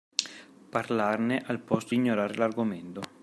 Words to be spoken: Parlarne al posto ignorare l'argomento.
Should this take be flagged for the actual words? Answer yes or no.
no